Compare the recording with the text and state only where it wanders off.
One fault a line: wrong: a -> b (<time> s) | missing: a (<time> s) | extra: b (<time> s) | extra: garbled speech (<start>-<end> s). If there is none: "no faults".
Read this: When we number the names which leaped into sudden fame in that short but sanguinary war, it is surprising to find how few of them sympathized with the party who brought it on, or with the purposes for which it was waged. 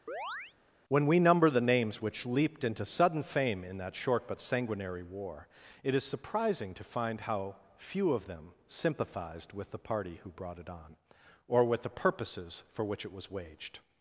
no faults